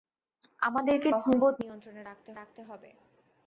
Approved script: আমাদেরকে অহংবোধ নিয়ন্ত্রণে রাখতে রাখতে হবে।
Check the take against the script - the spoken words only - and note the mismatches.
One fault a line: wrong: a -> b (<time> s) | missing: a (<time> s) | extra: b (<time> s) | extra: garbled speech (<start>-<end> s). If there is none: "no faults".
no faults